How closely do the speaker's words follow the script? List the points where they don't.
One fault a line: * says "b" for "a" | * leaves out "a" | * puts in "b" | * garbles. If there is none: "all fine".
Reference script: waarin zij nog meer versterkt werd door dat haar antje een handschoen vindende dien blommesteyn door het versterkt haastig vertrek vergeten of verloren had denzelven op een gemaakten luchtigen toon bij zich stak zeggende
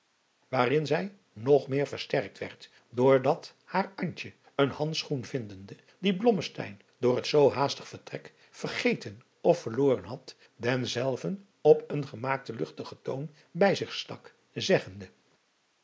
* says "zoo" for "versterkt"